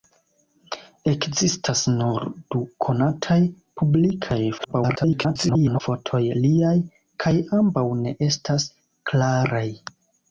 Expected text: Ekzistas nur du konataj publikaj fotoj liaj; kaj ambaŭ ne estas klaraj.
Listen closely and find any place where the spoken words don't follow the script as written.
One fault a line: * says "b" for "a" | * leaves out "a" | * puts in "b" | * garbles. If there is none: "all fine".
* garbles